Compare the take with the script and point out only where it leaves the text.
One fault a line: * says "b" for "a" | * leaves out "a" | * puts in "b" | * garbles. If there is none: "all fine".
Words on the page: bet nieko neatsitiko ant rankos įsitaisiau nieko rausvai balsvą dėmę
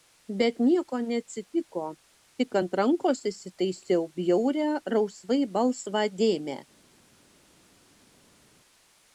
* puts in "tik"
* says "bjaurią" for "nieko"